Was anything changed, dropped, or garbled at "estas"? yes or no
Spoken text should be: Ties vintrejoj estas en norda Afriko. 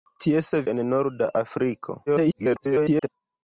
yes